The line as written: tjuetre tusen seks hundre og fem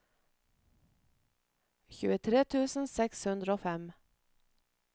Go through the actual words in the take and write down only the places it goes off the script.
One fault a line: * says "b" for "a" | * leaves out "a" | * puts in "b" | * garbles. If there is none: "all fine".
all fine